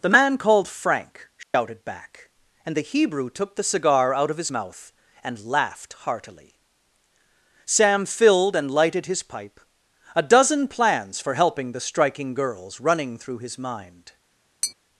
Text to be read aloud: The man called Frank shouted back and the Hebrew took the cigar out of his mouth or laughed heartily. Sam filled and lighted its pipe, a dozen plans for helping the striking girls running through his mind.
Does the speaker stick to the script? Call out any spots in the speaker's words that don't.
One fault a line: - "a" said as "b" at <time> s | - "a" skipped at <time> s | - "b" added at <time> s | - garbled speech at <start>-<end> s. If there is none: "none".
- "or" said as "and" at 5.2 s
- "its" said as "his" at 9.0 s